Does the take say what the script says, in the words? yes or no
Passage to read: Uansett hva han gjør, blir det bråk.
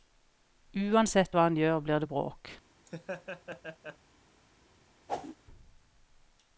yes